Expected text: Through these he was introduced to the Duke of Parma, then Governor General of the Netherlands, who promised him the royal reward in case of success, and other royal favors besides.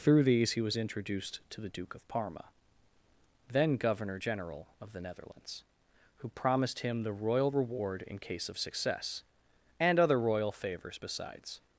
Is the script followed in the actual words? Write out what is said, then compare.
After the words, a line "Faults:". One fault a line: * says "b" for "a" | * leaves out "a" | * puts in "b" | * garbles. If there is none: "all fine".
Through these he was introduced to the Duke of Parma, then Governor General of the Netherlands, who promised him the royal reward in case of success, and other royal favors besides.
Faults:
all fine